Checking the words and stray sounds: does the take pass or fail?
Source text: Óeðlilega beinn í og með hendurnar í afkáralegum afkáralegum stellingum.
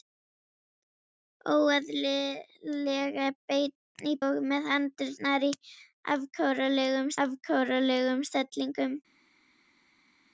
pass